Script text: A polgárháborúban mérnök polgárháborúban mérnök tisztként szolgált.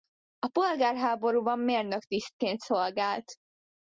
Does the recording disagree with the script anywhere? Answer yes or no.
yes